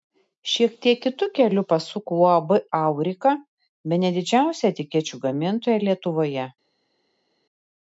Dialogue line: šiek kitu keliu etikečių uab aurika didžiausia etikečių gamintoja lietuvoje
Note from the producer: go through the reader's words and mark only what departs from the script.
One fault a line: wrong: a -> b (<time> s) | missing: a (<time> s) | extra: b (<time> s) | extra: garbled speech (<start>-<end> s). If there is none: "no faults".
extra: tiek (0.8 s)
wrong: etikečių -> pasuko (1.7 s)
extra: bene (4.0 s)